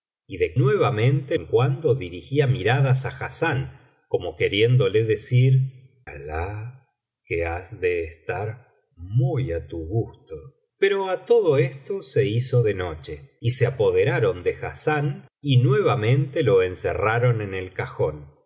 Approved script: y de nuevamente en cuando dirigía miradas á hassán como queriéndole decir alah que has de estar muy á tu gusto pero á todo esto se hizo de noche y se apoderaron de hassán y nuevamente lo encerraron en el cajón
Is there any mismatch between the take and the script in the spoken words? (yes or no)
no